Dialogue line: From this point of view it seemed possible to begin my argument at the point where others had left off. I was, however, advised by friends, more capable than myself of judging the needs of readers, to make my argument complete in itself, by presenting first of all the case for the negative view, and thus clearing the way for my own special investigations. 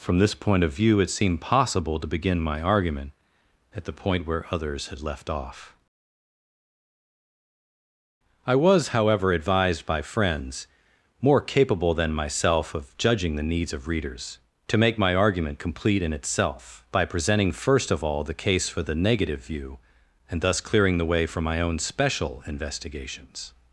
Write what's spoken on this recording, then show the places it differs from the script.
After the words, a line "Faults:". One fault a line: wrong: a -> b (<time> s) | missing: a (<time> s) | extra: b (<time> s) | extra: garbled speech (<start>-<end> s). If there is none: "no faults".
From this point of view it seemed possible to begin my argument at the point where others had left off. I was, however, advised by friends, more capable than myself of judging the needs of readers, to make my argument complete in itself, by presenting first of all the case for the negative view, and thus clearing the way for my own special investigations.
Faults:
no faults